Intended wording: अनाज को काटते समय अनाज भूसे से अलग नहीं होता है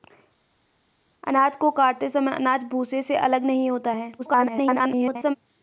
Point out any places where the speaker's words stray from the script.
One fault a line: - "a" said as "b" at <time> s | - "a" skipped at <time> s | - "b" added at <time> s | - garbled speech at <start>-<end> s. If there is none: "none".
- garbled speech at 4.2-5.4 s